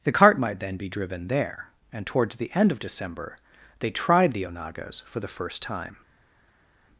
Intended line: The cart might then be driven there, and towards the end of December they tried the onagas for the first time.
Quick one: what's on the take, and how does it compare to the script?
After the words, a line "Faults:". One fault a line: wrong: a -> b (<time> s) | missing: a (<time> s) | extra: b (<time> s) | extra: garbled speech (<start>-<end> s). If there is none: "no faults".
The cart might then be driven there, and towards the end of December they tried the onagas for the first time.
Faults:
no faults